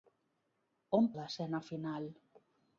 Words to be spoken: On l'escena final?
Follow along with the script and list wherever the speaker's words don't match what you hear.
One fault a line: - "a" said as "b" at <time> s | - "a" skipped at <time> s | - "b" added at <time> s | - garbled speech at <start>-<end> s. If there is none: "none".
none